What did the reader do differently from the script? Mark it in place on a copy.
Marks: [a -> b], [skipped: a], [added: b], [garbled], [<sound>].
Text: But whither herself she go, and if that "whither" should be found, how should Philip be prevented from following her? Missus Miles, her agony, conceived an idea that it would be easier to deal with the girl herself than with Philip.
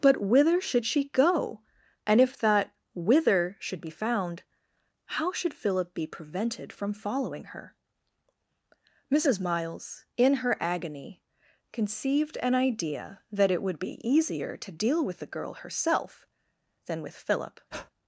But whither [herself -> should] she go, and if that "whither" should be found, how should Philip be prevented from following her? Missus Miles, [added: in] her agony, conceived an idea that it would be easier to deal with the girl herself than with Philip. [breath]